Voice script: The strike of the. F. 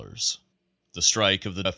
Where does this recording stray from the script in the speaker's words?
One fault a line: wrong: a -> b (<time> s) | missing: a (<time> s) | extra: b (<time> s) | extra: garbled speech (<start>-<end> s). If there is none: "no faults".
no faults